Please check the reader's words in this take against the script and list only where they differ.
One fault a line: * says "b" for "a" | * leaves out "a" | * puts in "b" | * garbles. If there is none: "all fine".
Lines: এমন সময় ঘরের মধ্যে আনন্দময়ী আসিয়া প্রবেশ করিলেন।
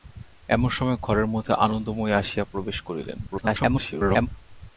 * garbles